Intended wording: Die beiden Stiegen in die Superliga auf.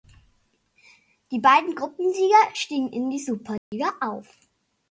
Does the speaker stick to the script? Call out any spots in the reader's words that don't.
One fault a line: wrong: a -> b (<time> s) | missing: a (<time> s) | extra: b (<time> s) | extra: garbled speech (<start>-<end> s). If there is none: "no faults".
extra: Gruppensieger (1.8 s)